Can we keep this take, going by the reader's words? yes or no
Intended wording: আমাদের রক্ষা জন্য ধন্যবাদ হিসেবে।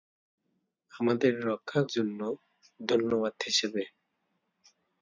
yes